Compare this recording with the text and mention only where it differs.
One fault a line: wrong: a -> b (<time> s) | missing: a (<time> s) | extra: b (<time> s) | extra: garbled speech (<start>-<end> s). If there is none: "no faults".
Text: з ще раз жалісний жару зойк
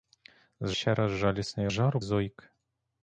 no faults